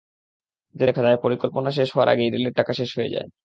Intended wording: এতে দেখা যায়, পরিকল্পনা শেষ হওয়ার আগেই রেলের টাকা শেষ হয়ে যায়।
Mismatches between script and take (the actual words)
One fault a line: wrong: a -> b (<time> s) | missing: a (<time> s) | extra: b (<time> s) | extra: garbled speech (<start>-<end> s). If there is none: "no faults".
no faults